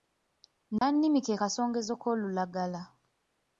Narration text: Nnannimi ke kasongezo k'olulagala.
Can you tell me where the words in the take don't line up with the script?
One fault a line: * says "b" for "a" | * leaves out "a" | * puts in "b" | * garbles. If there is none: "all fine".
all fine